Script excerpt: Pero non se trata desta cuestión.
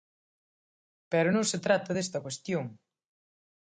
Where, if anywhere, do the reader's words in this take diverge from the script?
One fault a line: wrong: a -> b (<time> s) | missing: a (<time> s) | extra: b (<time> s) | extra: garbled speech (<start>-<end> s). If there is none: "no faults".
no faults